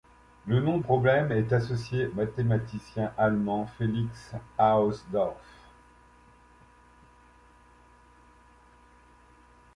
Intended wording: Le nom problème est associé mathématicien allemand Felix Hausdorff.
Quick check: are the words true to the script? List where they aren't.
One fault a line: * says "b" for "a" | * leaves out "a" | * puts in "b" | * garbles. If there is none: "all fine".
all fine